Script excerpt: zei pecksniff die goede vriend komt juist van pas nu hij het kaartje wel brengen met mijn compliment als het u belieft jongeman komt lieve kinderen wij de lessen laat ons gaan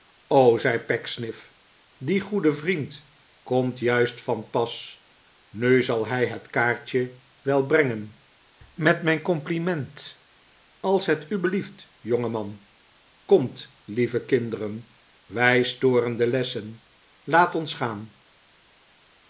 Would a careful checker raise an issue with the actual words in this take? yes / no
yes